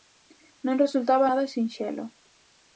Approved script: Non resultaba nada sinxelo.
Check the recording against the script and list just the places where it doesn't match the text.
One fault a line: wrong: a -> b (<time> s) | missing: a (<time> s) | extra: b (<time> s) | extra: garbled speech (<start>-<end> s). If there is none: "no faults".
no faults